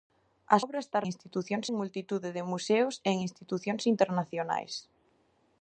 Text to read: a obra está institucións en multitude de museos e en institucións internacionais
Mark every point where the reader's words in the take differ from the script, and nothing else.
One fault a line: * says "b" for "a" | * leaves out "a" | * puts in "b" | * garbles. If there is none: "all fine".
all fine